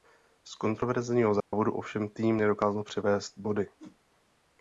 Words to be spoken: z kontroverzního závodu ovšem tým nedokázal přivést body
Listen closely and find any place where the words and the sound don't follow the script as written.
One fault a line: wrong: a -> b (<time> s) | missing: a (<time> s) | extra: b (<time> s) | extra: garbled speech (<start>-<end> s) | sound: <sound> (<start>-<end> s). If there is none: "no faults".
sound: dropout (1.4-1.5 s)
sound: whoosh (3.8-4.0 s)